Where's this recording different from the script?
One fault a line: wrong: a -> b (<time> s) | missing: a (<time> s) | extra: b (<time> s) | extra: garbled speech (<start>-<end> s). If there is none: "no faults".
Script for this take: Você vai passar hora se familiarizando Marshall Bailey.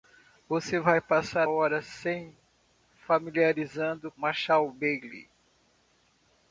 no faults